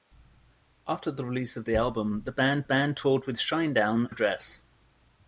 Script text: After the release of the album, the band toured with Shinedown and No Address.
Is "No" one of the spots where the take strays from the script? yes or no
yes